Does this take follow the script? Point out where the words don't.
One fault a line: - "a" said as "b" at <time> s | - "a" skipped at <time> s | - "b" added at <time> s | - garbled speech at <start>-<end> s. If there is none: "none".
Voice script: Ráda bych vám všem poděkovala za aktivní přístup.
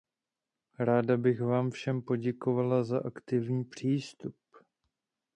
none